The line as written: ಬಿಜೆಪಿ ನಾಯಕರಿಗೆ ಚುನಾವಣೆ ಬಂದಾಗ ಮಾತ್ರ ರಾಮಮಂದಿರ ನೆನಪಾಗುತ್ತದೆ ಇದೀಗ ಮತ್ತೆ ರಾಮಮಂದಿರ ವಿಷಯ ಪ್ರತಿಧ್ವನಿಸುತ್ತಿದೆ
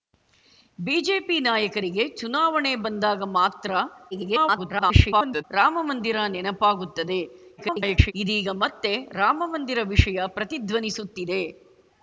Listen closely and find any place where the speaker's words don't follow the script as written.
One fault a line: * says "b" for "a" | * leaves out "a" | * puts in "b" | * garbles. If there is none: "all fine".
* garbles
* garbles